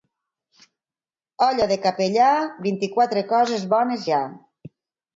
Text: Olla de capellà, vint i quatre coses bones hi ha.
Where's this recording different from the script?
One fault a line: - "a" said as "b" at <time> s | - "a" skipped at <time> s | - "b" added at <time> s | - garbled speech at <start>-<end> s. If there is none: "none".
none